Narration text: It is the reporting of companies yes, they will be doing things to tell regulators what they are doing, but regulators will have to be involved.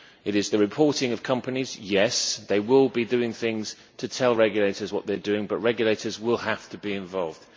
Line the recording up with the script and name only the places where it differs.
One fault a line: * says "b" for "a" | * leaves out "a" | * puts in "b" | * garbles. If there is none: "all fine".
all fine